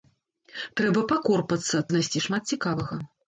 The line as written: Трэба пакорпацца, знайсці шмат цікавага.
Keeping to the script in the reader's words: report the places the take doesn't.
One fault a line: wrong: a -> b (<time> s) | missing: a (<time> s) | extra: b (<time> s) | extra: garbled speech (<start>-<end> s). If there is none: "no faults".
no faults